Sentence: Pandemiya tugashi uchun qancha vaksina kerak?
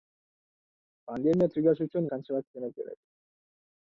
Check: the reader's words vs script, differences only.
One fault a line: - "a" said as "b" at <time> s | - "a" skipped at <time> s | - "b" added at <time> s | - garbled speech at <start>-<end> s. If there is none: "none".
none